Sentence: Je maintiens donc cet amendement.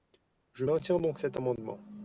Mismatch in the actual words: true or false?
false